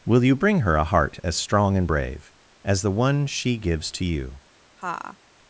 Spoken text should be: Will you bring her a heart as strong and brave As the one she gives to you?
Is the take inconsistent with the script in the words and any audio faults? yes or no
yes